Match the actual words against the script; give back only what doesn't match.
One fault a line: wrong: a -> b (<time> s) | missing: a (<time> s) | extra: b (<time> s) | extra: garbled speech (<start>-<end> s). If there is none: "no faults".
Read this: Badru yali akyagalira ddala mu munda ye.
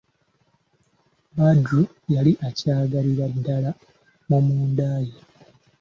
no faults